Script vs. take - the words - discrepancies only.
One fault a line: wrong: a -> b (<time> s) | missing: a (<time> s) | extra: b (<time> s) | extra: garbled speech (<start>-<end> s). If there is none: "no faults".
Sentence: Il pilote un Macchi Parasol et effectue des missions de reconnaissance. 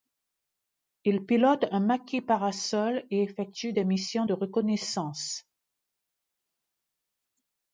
no faults